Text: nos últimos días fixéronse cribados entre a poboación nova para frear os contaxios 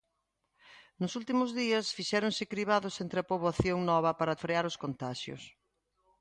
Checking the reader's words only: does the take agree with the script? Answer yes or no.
yes